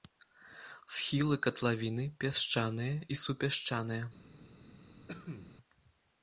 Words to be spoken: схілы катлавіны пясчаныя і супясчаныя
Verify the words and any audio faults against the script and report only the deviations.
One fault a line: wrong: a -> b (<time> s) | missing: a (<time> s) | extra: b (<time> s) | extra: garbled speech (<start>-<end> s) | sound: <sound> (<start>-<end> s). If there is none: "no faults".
sound: cough (5.1-5.5 s)